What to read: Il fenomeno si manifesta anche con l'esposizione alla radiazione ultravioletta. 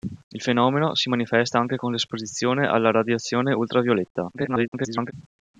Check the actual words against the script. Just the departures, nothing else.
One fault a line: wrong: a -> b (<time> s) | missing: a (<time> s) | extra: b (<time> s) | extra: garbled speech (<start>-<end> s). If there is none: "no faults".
extra: garbled speech (4.3-5.1 s)